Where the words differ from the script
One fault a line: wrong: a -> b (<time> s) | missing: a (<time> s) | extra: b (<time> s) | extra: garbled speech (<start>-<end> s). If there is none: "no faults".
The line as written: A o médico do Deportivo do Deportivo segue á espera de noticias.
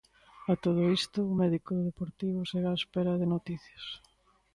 extra: todo isto (0.6 s)
missing: do Deportivo (2.4 s)